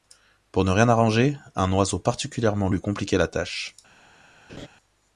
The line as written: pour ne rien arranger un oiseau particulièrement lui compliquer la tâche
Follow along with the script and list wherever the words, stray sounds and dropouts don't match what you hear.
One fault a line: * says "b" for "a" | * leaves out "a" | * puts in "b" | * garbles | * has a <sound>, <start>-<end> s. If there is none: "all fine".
* has a laugh, 4.5-4.7 s